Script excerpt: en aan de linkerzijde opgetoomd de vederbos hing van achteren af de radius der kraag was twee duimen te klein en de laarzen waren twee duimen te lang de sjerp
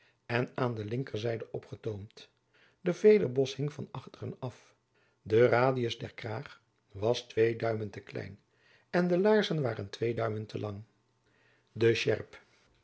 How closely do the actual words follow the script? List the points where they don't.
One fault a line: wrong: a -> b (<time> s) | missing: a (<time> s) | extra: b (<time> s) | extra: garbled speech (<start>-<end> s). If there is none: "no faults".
no faults